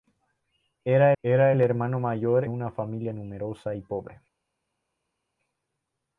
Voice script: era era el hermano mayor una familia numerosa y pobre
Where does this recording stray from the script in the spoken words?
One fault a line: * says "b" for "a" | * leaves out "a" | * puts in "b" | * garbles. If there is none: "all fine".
all fine